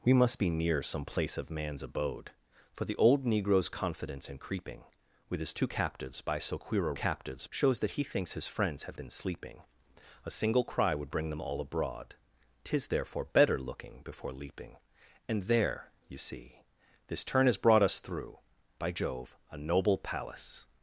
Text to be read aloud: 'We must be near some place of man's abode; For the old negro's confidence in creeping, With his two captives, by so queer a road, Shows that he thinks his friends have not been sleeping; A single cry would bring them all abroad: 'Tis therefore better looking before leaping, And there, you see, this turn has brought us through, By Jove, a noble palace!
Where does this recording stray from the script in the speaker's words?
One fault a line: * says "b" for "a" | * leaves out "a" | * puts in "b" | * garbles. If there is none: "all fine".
* says "captives" for "road"
* leaves out "not"